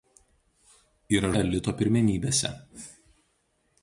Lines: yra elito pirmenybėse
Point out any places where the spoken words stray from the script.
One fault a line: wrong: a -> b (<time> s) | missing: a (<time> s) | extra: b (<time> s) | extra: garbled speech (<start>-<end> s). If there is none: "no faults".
no faults